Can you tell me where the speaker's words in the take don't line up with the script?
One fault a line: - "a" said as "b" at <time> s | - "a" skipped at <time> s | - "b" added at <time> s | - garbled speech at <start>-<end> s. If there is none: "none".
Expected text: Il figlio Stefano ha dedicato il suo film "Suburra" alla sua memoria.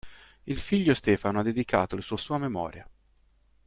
- "film Suburra alla" skipped at 2.2 s